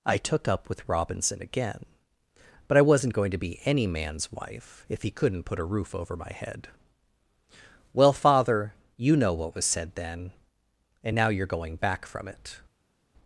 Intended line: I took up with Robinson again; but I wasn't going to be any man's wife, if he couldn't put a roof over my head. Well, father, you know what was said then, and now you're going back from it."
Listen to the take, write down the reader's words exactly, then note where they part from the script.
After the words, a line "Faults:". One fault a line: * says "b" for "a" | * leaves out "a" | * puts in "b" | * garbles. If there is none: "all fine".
I took up with Robinson again; but I wasn't going to be any man's wife, if he couldn't put a roof over my head. Well, father, you know what was said then, and now you're going back from it."
Faults:
all fine